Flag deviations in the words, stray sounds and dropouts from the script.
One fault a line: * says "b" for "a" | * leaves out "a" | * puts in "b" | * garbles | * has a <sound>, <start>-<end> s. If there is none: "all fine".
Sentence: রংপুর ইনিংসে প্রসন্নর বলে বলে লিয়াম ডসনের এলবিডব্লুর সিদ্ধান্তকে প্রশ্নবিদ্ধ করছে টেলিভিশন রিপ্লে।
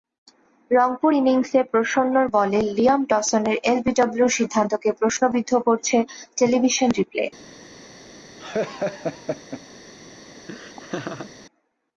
* leaves out "বলে"
* has a laugh, 8.4-9.6 s
* has a laugh, 10.5-11.3 s